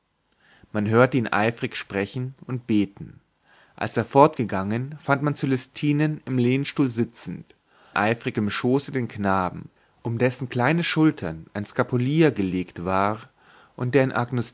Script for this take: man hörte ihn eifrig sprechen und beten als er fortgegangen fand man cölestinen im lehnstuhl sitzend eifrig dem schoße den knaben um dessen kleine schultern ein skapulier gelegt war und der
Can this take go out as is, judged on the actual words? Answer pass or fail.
pass